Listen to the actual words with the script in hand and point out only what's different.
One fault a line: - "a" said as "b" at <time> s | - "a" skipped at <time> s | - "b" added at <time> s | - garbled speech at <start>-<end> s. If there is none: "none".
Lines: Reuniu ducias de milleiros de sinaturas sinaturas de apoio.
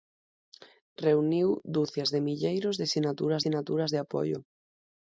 none